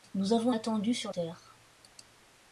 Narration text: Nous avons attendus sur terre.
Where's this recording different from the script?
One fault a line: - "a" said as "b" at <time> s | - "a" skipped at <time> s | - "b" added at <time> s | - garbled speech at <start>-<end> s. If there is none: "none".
none